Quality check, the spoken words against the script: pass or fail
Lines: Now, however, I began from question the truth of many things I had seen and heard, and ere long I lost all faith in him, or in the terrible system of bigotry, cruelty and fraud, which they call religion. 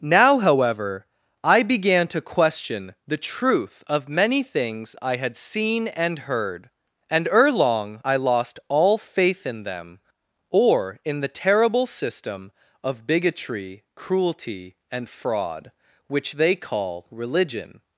fail